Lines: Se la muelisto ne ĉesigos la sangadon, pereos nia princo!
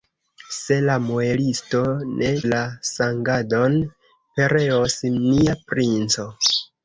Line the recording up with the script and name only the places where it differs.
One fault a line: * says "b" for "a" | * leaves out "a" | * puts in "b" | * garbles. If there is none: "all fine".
* leaves out "ĉesigos"